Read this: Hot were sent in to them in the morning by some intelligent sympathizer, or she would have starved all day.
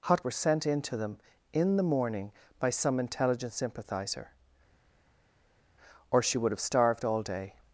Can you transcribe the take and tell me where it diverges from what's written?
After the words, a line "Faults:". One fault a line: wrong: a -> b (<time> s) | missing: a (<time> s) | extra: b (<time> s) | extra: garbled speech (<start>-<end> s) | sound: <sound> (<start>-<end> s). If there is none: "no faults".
Hot were sent in to them in the morning by some intelligent sympathizer, or she would have starved all day.
Faults:
no faults